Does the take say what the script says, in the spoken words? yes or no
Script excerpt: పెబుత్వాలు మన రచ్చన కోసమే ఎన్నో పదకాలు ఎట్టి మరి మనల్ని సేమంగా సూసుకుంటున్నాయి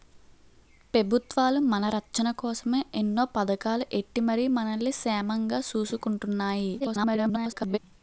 no